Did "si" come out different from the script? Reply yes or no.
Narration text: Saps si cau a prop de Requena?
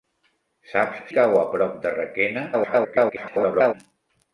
yes